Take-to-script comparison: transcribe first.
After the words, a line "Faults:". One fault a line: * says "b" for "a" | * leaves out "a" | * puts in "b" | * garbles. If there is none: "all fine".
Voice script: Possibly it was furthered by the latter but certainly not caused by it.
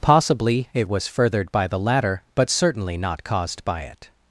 Possibly it was furthered by the latter but certainly not caused by it.
Faults:
all fine